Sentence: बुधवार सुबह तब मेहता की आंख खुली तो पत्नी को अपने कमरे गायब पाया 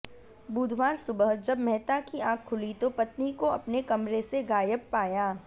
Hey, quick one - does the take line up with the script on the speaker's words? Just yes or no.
no